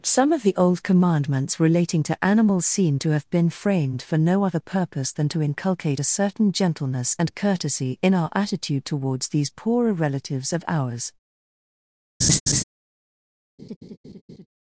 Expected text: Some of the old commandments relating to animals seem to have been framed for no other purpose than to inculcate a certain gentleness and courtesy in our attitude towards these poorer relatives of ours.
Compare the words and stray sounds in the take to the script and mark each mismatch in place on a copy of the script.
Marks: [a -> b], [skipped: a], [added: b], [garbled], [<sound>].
Some of the old commandments relating to animals seem to have been framed for no other purpose than to inculcate a certain gentleness and courtesy in our attitude towards these poorer relatives of ours. [laugh] [laugh]